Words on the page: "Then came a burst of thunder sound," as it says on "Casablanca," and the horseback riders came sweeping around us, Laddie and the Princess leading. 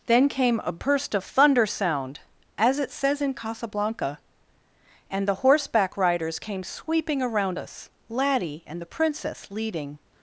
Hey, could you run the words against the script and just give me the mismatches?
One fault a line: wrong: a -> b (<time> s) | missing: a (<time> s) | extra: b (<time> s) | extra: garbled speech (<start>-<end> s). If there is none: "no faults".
wrong: on -> in (3.2 s)